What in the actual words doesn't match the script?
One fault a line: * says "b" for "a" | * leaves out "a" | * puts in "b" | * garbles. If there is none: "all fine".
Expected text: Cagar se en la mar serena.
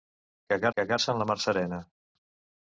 * puts in "cagar"